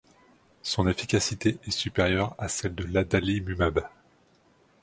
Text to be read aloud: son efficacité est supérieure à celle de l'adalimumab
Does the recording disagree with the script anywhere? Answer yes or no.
no